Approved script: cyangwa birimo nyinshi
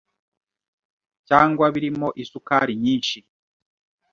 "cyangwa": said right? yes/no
yes